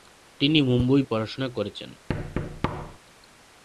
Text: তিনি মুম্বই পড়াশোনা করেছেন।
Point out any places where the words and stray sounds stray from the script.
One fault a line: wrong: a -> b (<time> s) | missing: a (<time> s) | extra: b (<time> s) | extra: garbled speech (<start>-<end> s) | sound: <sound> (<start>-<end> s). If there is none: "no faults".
sound: thud (2.1-3.0 s)